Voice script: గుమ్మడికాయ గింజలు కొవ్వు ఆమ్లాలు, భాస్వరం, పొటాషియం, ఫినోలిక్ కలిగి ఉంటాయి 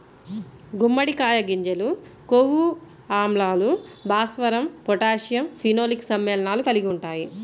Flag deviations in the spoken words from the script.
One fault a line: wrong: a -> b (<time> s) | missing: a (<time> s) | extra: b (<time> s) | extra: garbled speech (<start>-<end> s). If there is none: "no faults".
extra: సమ్మేళనాలు (6.1 s)